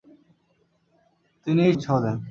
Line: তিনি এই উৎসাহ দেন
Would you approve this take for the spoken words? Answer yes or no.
yes